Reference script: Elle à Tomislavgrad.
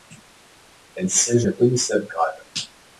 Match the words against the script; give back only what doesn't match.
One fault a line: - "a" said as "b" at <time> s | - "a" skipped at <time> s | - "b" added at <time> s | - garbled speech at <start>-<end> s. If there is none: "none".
- "siège" added at 1.1 s